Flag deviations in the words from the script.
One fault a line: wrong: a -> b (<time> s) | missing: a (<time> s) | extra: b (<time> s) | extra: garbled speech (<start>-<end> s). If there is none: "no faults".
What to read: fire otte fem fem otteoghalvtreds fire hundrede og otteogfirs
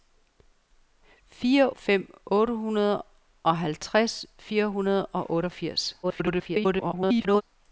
missing: otte fem (1.7 s)
extra: garbled speech (6.0-7.4 s)